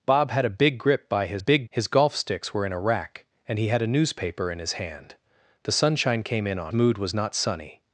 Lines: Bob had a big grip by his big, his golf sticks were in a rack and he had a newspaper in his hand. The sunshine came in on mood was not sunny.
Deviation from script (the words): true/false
false